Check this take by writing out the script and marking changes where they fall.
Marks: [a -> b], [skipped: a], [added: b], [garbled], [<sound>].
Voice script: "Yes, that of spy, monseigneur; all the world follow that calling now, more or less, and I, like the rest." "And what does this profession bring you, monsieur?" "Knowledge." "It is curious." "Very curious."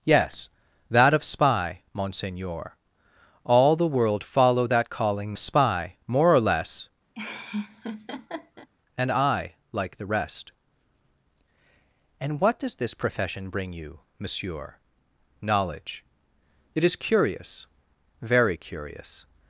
"Yes, that of spy, monseigneur; all the world follow that calling [now, -> spy] more or less, [laugh] and I, like the rest." "And what does this profession bring you, monsieur?" "Knowledge." "It is curious." "Very curious."